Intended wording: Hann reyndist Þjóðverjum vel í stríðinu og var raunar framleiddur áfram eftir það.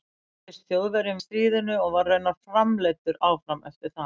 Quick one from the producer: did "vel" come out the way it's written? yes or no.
no